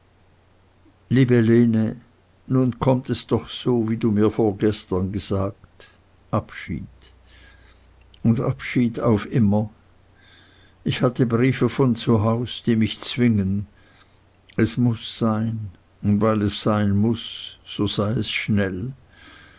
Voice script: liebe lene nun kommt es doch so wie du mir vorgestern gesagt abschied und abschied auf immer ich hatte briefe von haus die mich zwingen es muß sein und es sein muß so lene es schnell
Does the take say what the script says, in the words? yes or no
no